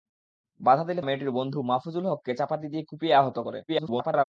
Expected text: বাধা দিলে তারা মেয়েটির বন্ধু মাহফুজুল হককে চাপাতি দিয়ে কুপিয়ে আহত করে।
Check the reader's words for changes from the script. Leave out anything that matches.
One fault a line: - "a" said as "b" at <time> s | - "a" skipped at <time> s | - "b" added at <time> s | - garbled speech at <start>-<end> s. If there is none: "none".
- "তারা" skipped at 1.0 s
- garbled speech at 3.7-4.2 s